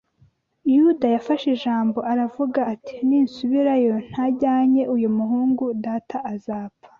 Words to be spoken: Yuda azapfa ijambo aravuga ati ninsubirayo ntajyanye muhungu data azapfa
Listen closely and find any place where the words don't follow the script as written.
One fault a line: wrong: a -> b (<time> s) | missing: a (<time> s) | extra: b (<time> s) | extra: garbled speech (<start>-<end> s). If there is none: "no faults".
wrong: azapfa -> yafashe (1.1 s)
extra: uyu (4.9 s)